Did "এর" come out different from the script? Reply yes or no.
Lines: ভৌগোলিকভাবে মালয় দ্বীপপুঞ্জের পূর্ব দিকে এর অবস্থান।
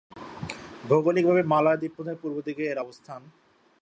no